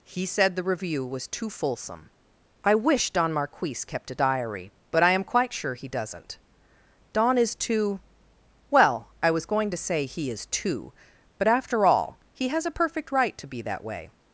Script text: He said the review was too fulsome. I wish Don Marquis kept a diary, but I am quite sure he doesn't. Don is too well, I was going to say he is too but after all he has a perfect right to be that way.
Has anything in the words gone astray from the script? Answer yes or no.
no